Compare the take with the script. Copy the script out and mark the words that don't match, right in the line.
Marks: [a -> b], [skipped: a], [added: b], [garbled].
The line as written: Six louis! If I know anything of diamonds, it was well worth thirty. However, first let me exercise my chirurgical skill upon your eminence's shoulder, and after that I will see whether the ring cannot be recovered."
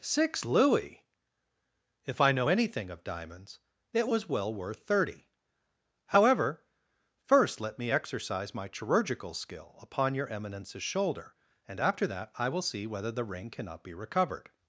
Six louis! If I know anything of diamonds, it was well worth thirty. However, first let me exercise my chirurgical skill upon your eminence's shoulder, and after that I will see whether the ring cannot be recovered."